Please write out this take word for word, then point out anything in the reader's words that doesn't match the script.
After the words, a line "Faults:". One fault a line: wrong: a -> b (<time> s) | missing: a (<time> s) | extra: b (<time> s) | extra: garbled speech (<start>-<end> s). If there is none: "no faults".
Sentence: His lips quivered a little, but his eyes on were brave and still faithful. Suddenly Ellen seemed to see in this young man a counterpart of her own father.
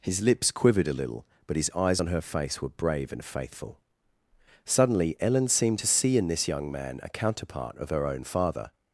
His lips quivered a little, but his eyes on her face were brave and faithful. Suddenly Ellen seemed to see in this young man a counterpart of her own father.
Faults:
extra: her face (2.1 s)
missing: still (3.2 s)